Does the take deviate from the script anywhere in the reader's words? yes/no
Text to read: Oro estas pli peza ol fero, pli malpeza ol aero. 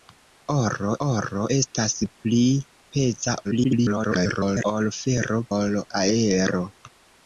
yes